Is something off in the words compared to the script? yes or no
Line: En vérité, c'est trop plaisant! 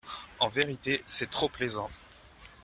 no